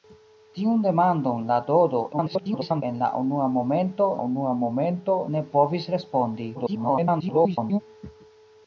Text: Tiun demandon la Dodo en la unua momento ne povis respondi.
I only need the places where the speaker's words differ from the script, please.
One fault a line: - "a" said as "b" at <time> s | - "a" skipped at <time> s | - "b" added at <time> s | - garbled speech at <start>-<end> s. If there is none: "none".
- garbled speech at 2.1-2.8 s
- "unua momento" added at 4.3 s
- garbled speech at 6.5-7.8 s